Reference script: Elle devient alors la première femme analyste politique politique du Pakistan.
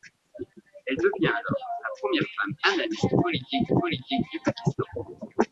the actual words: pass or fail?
pass